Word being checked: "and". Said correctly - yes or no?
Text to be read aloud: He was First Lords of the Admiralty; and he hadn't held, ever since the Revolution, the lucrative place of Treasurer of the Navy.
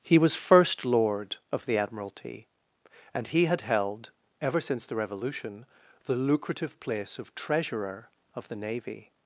yes